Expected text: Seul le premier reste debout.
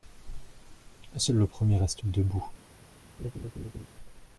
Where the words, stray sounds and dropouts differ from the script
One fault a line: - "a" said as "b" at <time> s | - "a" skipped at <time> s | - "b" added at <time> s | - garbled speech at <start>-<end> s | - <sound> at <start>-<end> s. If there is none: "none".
- laugh at 3.2-3.9 s